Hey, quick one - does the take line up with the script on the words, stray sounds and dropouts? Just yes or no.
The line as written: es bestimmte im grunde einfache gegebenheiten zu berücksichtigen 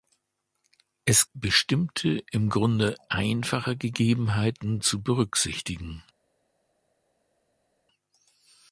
yes